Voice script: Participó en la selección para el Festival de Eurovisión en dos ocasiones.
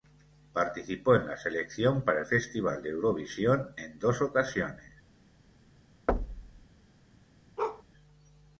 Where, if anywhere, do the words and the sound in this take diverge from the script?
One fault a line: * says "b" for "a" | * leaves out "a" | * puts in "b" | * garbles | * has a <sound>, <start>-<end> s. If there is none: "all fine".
* has a thud, 6.1-6.7 s
* has a bark, 7.6-7.8 s